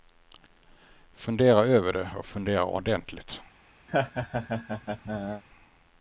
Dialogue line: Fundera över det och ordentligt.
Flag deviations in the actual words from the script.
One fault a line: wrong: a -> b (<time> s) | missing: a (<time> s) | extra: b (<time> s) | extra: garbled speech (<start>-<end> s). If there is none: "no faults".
extra: fundera (2.3 s)